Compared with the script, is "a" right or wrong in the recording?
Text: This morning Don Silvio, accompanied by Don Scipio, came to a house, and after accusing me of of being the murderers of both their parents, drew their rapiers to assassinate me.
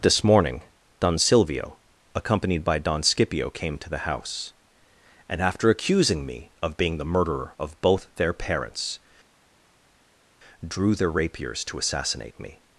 wrong